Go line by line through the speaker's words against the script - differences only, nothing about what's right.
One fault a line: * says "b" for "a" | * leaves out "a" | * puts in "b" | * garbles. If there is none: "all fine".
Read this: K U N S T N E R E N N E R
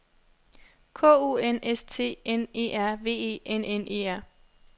* puts in "V"